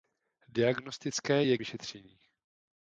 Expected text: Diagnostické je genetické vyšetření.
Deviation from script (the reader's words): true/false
true